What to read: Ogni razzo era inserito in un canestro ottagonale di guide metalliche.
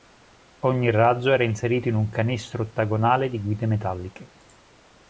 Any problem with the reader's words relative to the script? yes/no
no